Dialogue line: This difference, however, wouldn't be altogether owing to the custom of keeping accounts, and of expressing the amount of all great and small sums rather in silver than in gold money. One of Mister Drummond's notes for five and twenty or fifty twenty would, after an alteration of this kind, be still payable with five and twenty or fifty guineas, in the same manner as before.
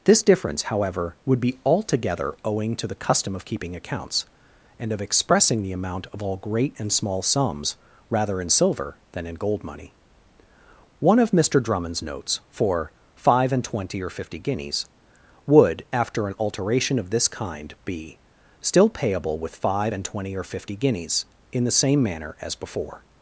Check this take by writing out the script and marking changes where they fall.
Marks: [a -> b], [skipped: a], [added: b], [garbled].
This difference, however, [wouldn't -> would] be altogether owing to the custom of keeping accounts, and of expressing the amount of all great and small sums rather in silver than in gold money. One of Mister Drummond's notes for five and twenty or fifty [twenty -> guineas] would, after an alteration of this kind, be still payable with five and twenty or fifty guineas, in the same manner as before.